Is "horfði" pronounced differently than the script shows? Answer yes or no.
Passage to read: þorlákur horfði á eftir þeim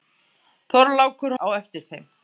yes